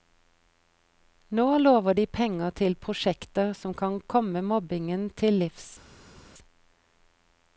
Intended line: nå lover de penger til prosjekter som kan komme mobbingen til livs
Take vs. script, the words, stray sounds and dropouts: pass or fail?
pass